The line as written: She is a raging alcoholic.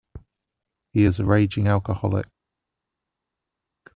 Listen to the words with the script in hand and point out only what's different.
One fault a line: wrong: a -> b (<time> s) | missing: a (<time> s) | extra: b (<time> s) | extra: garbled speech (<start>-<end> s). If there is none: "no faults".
wrong: She -> He (0.9 s)